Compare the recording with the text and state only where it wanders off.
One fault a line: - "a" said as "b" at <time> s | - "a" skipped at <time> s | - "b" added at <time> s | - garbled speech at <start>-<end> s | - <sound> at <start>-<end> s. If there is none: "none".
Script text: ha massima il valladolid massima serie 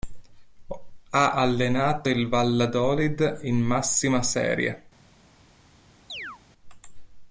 - "massima" said as "allenato" at 1.3 s
- "in" added at 3.4 s
- chirp at 6.1-6.4 s